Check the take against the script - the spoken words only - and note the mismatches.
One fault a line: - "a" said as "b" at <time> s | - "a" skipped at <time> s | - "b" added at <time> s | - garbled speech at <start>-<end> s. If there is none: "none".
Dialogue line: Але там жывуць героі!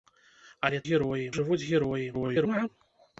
- "там" said as "героі" at 0.9 s
- garbled speech at 2.1-2.7 s